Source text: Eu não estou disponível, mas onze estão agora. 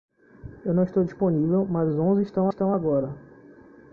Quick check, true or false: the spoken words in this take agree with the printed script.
false